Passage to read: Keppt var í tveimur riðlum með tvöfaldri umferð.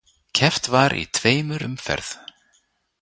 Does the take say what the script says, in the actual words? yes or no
no